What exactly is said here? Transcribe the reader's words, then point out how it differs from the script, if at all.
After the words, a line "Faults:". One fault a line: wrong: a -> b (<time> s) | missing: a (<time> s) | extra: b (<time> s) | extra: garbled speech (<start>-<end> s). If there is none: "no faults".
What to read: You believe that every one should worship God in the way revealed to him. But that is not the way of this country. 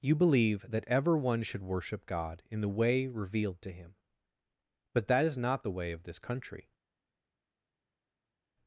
You believe that ever one should worship God in the way revealed to him. But that is not the way of this country.
Faults:
wrong: every -> ever (0.9 s)